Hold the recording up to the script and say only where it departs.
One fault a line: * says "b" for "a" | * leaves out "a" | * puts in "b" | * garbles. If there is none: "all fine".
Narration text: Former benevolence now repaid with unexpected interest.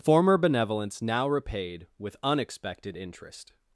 all fine